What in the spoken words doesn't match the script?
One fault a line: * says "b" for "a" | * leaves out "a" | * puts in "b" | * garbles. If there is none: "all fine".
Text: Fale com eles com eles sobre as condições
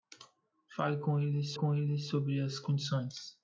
all fine